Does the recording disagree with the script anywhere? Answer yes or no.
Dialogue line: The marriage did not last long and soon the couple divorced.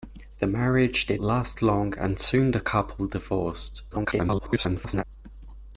yes